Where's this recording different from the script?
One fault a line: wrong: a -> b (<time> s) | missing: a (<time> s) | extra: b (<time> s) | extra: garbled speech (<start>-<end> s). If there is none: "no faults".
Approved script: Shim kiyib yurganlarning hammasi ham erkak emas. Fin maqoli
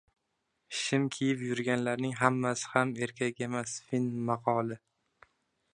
no faults